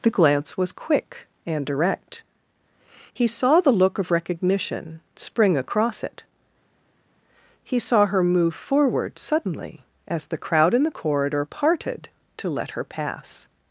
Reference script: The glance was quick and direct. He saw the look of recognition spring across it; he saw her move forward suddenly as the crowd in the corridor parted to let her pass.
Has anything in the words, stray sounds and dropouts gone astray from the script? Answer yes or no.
no